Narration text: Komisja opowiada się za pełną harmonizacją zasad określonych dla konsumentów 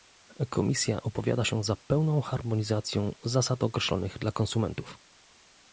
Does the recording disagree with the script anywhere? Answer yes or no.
no